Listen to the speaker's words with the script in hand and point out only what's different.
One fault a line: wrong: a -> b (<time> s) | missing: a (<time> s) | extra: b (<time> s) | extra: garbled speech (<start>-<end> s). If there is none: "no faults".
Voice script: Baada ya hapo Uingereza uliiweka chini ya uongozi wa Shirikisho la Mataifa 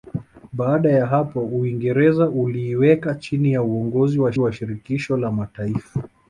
extra: wa (4.4 s)